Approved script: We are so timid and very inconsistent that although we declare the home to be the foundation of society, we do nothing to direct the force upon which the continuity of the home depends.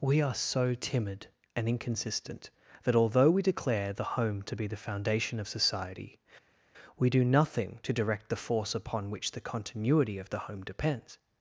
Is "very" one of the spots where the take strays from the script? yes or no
yes